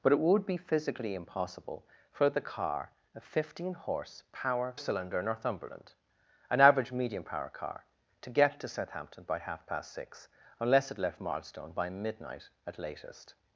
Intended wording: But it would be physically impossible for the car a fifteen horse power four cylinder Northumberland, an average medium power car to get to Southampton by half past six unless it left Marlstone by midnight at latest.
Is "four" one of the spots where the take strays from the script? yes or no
yes